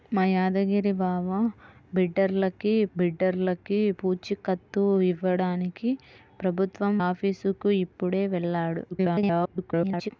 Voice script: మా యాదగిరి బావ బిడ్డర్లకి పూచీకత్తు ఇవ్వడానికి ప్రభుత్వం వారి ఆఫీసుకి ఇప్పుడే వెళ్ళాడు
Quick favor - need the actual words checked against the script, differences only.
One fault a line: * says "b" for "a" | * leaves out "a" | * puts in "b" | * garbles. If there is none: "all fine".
* puts in "బిడ్డర్లకి"
* leaves out "వారి"
* garbles